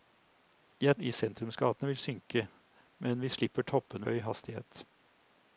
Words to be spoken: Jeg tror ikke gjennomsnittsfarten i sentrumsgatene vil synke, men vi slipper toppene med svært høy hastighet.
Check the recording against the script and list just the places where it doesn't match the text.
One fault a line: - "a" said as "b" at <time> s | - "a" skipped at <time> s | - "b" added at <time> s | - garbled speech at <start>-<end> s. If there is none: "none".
- "tror ikke gjennomsnittsfarten" skipped at 1.0 s
- "med svært" skipped at 4.1 s